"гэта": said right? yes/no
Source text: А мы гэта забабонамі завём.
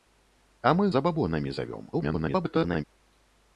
no